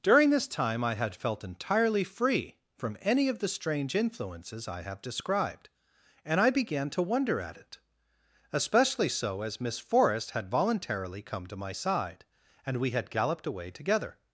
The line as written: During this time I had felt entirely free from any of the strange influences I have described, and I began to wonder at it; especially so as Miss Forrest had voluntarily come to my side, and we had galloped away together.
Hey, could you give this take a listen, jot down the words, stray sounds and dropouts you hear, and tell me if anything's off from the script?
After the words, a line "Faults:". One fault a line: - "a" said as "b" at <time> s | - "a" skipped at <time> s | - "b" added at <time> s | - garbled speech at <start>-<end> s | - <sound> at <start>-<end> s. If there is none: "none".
During this time I had felt entirely free from any of the strange influences I have described, and I began to wonder at it; especially so as Miss Forrest had voluntarily come to my side, and we had galloped away together.
Faults:
none